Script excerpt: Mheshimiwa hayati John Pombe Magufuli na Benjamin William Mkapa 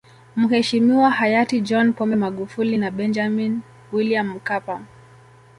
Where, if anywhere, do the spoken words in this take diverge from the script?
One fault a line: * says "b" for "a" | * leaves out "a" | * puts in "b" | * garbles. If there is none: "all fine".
all fine